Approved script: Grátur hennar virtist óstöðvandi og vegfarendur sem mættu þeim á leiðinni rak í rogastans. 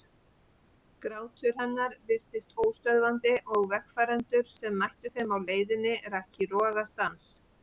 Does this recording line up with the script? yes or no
yes